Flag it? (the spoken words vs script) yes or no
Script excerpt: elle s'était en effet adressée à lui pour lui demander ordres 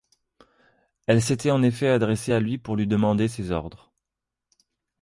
yes